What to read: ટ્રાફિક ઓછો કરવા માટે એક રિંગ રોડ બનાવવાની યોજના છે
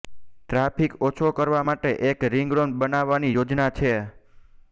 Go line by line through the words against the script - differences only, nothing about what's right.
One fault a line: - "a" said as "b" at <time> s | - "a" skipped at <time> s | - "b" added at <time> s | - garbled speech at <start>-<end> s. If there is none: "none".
none